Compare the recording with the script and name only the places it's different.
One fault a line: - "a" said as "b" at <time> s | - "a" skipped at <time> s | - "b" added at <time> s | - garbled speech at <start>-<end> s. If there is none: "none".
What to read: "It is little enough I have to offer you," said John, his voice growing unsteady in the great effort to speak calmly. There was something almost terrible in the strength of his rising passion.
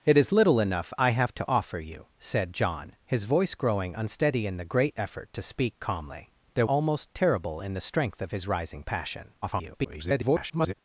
- "was something" skipped at 6.7 s
- garbled speech at 9.4-10.7 s